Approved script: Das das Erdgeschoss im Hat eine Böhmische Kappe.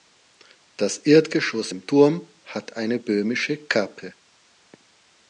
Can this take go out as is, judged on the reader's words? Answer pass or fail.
fail